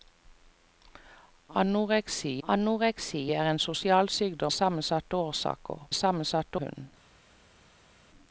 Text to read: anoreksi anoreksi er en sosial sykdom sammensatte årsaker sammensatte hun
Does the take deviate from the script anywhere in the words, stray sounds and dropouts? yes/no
no